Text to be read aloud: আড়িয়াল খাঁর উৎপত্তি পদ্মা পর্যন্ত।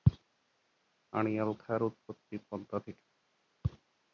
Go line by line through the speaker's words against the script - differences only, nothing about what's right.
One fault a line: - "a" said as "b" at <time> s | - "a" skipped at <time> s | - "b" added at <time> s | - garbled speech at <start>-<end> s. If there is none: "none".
- "পর্যন্ত" said as "থেকে" at 2.8 s